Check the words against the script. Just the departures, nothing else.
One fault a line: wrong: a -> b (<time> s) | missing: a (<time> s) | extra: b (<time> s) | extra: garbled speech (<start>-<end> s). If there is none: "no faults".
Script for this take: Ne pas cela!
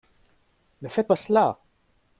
extra: faites (0.9 s)